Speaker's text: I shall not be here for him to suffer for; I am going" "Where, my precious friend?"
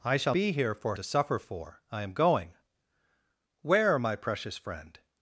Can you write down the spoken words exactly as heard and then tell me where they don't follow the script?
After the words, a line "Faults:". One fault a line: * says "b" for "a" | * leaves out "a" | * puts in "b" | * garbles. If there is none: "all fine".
I shall be here for to suffer for; I am going" "Where, my precious friend?"
Faults:
* leaves out "not"
* leaves out "him"